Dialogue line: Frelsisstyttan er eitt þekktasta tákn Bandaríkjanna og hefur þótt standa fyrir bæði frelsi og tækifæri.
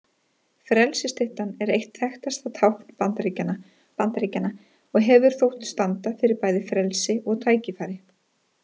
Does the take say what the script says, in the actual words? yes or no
no